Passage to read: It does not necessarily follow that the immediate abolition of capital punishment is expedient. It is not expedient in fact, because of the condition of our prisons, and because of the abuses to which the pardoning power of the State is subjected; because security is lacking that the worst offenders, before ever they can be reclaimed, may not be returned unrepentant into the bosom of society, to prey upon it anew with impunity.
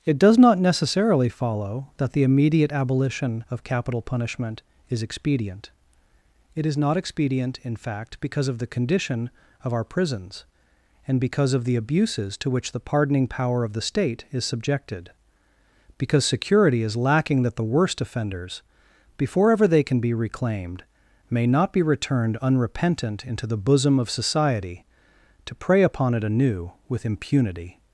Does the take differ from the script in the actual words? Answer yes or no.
no